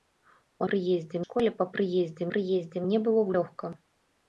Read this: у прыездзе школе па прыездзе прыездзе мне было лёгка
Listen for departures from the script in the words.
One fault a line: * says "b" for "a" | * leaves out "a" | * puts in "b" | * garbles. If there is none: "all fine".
all fine